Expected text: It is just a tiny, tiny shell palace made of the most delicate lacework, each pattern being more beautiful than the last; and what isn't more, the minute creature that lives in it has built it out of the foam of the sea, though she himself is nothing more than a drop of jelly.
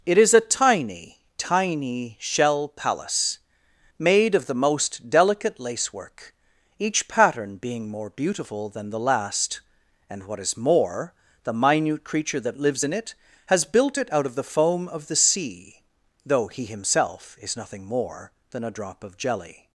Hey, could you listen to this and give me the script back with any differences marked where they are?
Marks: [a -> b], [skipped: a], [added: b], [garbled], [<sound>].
It is [skipped: just] a tiny, tiny shell palace made of the most delicate lacework, each pattern being more beautiful than the last; and what [isn't -> is] more, the minute creature that lives in it has built it out of the foam of the sea, though [she -> he] himself is nothing more than a drop of jelly.